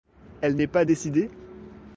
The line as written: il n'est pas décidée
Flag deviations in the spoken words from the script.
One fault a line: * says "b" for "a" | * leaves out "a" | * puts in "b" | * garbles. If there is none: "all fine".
* says "elle" for "il"